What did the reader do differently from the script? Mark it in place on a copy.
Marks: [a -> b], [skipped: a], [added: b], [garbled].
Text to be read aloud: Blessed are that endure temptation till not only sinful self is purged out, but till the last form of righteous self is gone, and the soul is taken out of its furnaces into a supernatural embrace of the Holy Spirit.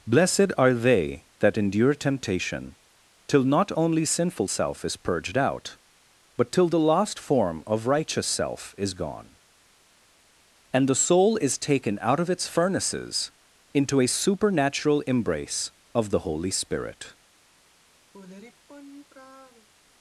Blessed are [added: they] that endure temptation till not only sinful self is purged out, but till the last form of righteous self is gone, and the soul is taken out of its furnaces into a supernatural embrace of the Holy Spirit.